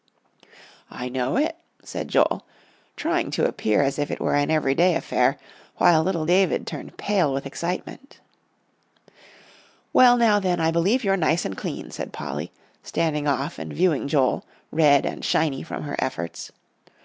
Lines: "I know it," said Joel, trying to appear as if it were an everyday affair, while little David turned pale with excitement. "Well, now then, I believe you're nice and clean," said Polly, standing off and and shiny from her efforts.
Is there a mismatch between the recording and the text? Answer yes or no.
yes